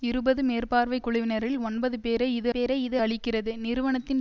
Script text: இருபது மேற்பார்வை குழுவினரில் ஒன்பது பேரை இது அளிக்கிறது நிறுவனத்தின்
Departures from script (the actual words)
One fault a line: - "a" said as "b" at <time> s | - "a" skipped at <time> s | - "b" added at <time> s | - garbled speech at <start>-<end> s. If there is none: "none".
- "பேரை இது" added at 2.5 s